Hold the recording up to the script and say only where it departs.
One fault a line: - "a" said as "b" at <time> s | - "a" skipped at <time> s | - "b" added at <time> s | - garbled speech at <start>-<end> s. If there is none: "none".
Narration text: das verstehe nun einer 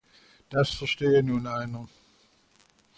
none